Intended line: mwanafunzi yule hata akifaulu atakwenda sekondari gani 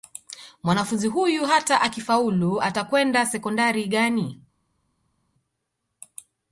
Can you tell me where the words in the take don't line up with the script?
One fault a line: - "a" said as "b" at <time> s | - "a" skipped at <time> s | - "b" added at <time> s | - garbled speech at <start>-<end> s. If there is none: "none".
- "yule" said as "huyu" at 1.1 s